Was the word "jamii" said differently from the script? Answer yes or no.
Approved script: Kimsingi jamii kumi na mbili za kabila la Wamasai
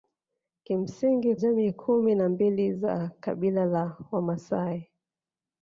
no